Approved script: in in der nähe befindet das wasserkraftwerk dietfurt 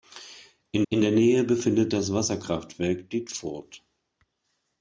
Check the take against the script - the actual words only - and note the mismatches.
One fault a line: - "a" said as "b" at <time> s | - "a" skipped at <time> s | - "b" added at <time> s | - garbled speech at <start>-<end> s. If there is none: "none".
none